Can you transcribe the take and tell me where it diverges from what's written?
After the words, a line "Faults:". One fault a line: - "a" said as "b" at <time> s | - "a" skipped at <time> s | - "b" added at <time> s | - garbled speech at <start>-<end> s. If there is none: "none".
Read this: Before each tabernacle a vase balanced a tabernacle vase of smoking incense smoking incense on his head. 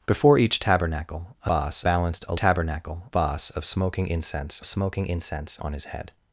Before each tabernacle a vase balanced a tabernacle vase of smoking incense smoking incense on his head.
Faults:
none